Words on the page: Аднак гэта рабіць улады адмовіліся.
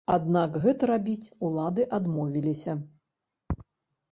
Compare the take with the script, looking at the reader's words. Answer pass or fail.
pass